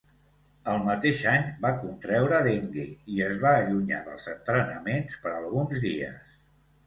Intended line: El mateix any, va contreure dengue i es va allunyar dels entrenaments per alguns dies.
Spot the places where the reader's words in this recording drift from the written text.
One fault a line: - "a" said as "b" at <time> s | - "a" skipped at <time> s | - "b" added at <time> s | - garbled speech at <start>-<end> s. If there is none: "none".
none